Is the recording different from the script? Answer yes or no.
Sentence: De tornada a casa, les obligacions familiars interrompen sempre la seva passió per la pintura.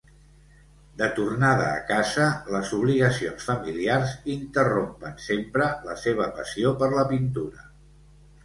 no